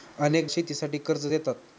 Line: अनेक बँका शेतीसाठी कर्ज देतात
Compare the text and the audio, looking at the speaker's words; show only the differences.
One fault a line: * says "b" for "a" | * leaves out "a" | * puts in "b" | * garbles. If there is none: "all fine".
* leaves out "बँका"